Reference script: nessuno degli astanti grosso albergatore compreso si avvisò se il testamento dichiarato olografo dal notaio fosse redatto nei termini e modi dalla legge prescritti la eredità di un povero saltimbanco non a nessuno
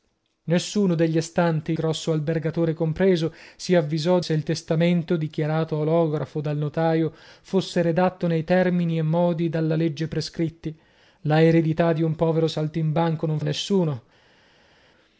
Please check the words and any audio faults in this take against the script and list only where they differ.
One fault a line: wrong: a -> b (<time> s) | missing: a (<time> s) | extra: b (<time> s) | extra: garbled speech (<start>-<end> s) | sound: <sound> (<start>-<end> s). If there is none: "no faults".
no faults